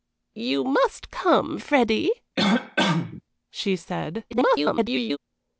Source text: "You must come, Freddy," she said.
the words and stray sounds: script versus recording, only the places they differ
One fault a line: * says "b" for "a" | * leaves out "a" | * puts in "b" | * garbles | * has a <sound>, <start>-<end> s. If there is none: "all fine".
* has a cough, 2.4-3.2 s
* garbles